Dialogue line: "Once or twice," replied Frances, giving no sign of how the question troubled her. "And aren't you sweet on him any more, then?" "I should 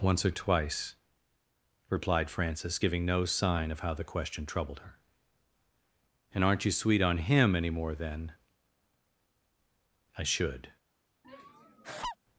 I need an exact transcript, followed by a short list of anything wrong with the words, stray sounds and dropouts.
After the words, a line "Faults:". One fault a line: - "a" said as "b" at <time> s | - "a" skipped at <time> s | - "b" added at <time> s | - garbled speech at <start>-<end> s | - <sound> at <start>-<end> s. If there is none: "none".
"Once or twice," replied Frances, giving no sign of how the question troubled her. "And aren't you sweet on him any more, then?" "I should
Faults:
- laugh at 11.2-12.2 s